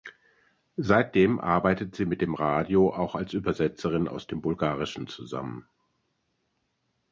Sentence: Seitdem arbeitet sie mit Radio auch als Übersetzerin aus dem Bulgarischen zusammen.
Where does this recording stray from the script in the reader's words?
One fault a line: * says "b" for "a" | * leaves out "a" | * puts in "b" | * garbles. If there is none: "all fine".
* puts in "dem"